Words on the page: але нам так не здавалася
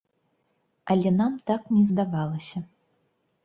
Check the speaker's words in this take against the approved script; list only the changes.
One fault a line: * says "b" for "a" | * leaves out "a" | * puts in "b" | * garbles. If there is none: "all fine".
all fine